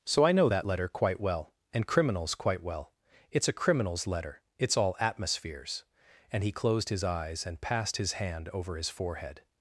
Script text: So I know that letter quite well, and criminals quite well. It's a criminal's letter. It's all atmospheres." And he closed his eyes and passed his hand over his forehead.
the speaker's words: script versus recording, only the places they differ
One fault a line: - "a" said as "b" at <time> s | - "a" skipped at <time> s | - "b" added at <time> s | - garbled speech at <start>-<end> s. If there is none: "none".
none